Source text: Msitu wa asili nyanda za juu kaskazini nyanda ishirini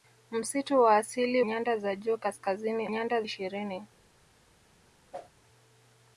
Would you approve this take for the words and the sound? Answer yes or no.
no